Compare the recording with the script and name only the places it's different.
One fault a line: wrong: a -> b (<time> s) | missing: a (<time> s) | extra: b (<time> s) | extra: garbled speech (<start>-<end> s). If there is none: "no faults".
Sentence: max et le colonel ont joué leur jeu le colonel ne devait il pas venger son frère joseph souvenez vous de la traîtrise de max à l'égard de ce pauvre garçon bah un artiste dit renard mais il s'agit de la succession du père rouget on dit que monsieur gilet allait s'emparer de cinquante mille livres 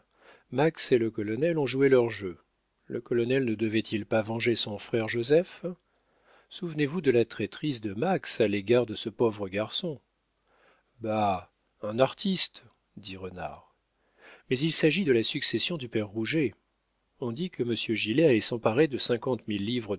no faults